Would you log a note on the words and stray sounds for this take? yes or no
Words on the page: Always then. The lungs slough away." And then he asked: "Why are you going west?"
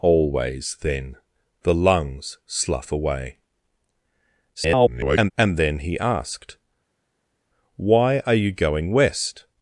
yes